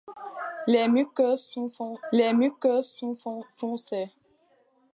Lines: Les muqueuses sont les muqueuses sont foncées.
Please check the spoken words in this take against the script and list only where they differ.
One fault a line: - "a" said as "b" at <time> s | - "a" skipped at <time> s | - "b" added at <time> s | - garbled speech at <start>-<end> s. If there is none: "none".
none